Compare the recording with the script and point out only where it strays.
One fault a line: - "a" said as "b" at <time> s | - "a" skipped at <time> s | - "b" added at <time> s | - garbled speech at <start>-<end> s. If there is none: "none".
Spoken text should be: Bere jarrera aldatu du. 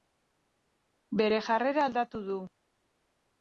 none